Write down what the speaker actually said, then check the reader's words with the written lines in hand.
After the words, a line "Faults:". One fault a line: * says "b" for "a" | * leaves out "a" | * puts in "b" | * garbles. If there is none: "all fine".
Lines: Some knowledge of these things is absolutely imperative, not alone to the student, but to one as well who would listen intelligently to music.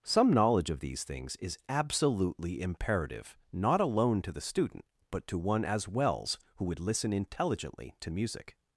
Some knowledge of these things is absolutely imperative, not alone to the student, but to one as wells who would listen intelligently to music.
Faults:
* says "wells" for "well"